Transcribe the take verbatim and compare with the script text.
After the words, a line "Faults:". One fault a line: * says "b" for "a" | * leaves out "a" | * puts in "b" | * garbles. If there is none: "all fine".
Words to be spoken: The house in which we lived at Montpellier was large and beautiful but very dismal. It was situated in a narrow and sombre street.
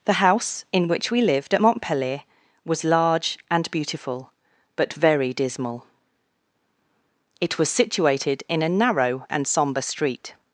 The house in which we lived at Montpellier was large and beautiful but very dismal. It was situated in a narrow and sombre street.
Faults:
all fine